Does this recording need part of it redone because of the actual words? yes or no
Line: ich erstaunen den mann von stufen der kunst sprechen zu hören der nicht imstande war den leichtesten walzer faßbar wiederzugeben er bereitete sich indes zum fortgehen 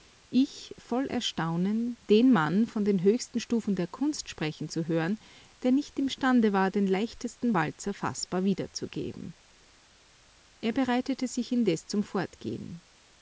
yes